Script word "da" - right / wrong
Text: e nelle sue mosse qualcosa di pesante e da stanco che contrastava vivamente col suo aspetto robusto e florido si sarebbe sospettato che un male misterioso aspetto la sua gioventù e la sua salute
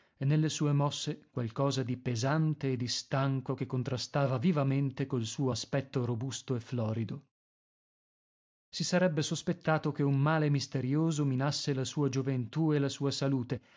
wrong